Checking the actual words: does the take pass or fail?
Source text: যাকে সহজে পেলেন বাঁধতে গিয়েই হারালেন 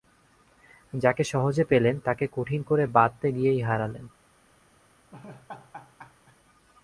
fail